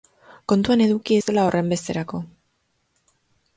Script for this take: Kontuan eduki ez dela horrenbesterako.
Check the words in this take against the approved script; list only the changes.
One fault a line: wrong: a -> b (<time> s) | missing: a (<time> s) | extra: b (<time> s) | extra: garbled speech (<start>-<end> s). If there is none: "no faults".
no faults